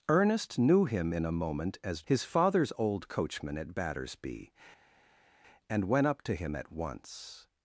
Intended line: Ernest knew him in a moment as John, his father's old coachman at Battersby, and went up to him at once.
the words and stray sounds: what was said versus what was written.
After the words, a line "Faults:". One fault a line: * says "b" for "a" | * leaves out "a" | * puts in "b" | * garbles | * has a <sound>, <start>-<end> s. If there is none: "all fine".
Ernest knew him in a moment as His father's old coachman at Battersby, and went up to him at once.
Faults:
* leaves out "John"